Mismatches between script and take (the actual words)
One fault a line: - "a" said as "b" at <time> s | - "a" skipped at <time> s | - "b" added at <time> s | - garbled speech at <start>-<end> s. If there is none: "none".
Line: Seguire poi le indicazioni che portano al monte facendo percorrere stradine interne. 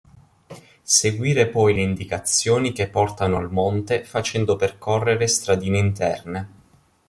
none